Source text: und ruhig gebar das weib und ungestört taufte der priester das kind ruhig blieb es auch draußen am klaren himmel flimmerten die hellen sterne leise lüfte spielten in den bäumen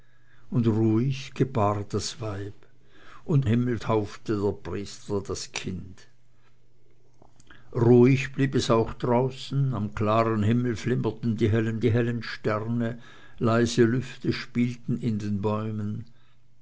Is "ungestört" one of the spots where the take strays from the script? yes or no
yes